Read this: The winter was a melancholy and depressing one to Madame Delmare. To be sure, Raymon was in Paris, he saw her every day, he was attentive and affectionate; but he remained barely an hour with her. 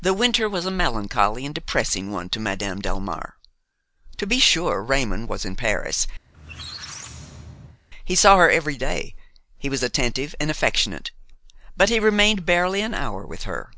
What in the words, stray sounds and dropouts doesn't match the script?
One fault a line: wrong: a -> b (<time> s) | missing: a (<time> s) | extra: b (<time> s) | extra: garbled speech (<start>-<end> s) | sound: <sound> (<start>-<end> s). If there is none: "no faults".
sound: squeak (6.3-7.8 s)